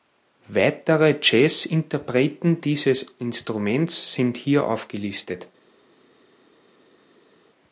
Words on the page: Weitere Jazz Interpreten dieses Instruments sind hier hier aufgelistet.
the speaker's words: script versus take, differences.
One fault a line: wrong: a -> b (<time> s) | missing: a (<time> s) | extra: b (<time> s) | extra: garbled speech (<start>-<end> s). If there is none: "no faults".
missing: hier (4.7 s)